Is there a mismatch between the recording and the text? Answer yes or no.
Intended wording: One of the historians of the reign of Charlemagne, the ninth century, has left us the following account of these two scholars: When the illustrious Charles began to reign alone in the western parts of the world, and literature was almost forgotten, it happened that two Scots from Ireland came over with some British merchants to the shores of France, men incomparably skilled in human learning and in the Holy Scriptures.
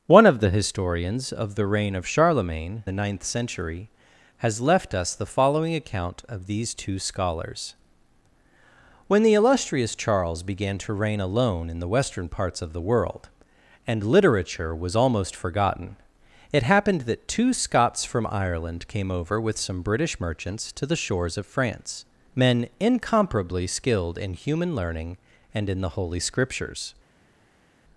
no